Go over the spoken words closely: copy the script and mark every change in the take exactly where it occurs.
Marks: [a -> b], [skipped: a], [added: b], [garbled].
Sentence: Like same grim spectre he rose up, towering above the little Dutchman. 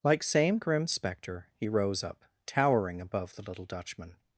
Like same grim spectre he rose up, towering above the little Dutchman.